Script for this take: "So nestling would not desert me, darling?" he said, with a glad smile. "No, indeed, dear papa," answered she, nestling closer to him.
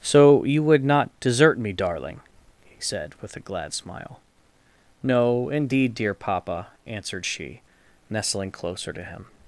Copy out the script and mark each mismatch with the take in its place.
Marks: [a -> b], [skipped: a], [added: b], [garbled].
"So [nestling -> you] would not desert me, darling?" he said, with a glad smile. "No, indeed, dear papa," answered she, nestling closer to him.